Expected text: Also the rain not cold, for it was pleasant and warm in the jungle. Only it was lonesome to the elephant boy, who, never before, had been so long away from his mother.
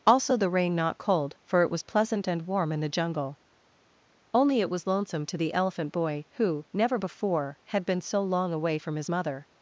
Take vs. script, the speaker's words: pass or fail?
pass